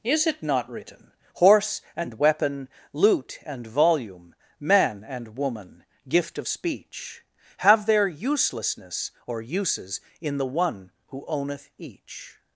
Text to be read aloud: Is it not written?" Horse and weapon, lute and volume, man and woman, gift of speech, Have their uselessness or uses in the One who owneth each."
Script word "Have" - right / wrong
right